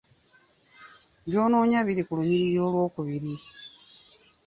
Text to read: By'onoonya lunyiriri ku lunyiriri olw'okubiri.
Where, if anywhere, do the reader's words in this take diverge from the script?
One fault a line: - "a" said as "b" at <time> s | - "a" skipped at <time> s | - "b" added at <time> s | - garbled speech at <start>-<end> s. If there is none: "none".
- "lunyiriri" said as "biri" at 1.9 s